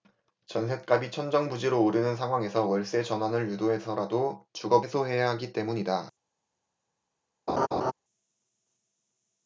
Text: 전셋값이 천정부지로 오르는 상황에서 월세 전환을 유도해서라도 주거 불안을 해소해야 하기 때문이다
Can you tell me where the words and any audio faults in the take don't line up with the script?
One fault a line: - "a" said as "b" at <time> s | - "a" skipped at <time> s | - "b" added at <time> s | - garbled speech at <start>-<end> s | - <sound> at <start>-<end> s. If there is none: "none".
- "불안을" skipped at 4.8 s
- laugh at 7.5-7.9 s